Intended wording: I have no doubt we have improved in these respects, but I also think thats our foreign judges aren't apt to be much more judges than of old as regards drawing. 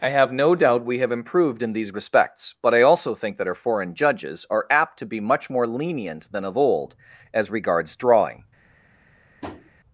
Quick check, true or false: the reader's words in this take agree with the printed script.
false